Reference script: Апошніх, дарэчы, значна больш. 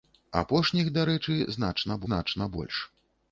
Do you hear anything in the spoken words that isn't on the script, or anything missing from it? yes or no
yes